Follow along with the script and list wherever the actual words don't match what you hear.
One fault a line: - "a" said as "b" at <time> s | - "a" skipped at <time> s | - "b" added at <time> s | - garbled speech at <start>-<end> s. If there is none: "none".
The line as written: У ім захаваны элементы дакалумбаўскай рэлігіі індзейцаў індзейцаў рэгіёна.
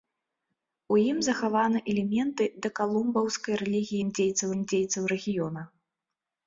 none